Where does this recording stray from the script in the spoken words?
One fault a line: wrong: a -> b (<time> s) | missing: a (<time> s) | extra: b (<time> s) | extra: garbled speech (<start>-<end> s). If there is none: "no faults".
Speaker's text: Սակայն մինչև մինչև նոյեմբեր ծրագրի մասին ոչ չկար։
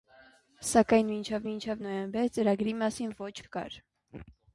no faults